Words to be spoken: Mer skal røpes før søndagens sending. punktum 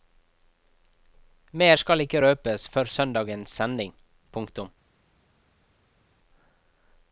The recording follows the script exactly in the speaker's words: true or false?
false